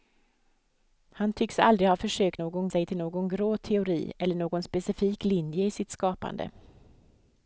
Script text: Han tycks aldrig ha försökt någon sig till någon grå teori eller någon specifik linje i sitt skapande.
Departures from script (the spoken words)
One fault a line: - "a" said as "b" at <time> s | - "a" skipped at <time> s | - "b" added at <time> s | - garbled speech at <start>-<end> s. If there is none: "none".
none